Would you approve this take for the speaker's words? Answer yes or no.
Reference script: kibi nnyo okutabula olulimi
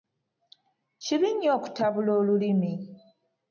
yes